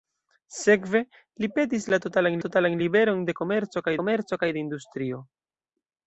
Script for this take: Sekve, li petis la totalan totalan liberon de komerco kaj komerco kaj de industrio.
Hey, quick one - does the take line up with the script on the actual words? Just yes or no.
yes